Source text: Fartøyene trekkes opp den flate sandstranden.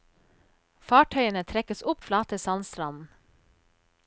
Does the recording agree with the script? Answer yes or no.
no